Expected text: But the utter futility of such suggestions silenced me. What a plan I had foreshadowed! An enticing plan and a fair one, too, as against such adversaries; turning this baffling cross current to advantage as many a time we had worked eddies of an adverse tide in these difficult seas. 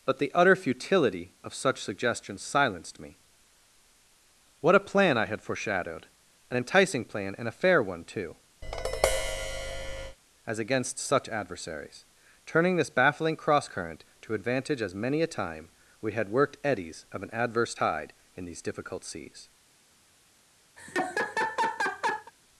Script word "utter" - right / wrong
right